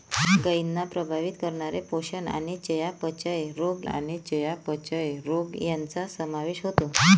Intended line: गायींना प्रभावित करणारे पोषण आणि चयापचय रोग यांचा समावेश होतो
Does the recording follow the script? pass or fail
fail